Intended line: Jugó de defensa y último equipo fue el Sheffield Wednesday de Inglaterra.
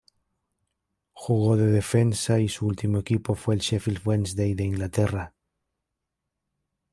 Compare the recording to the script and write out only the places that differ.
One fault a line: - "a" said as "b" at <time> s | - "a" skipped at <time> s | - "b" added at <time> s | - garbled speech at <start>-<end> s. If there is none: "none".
- "su" added at 2.5 s